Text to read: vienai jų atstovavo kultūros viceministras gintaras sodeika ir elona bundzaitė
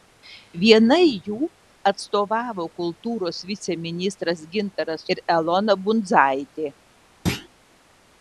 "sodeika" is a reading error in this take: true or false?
true